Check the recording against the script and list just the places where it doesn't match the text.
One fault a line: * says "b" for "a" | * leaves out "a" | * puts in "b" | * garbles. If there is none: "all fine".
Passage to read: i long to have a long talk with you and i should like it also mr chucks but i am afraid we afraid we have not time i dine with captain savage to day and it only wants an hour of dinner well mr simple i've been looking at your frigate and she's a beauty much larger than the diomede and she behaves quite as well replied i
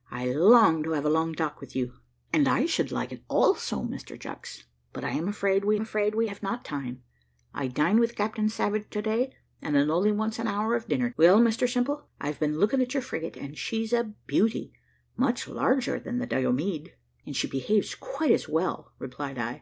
all fine